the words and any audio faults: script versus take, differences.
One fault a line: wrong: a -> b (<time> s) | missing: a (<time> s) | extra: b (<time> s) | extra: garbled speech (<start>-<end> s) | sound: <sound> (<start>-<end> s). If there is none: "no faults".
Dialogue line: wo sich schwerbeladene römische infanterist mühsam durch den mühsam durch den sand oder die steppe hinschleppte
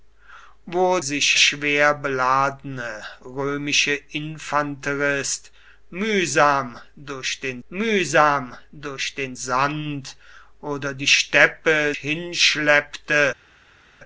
no faults